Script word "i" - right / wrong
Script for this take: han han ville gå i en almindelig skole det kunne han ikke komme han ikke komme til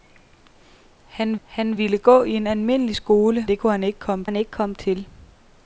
right